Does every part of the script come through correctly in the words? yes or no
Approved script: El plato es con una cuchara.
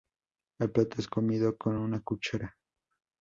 no